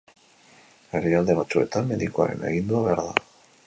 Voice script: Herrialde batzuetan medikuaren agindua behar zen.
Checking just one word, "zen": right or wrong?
wrong